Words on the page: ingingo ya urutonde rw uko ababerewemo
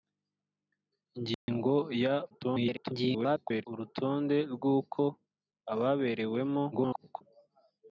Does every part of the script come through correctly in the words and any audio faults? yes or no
no